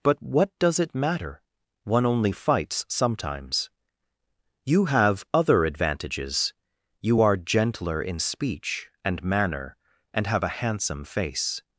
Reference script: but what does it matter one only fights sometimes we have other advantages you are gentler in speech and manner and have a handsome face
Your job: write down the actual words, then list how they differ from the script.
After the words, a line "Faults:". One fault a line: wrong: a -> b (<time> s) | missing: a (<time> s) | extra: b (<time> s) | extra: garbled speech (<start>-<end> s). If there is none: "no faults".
but what does it matter one only fights sometimes you have other advantages you are gentler in speech and manner and have a handsome face
Faults:
wrong: we -> you (4.7 s)